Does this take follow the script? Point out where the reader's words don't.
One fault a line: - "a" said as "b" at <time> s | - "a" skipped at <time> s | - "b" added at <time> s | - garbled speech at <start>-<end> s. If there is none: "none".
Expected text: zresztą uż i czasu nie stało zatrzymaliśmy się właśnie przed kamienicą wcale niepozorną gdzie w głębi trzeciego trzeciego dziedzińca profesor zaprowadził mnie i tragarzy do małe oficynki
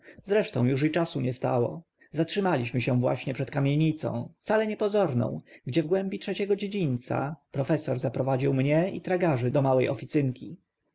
- "trzeciego" skipped at 6.6 s